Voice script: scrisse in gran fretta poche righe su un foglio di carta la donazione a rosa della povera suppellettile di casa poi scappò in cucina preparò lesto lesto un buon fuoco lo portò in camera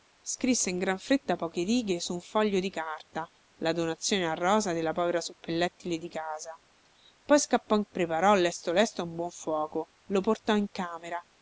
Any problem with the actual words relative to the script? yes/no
yes